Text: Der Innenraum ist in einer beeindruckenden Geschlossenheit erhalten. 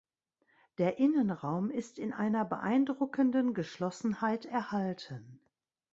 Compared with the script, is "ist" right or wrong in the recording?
right